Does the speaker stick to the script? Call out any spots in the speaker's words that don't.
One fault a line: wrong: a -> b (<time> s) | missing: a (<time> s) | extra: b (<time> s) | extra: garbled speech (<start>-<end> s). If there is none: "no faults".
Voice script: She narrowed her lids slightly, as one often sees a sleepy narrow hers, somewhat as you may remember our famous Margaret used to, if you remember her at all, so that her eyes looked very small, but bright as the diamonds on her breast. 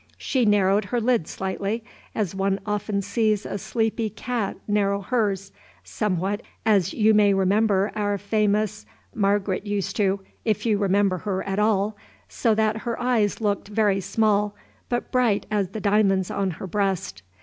extra: cat (4.1 s)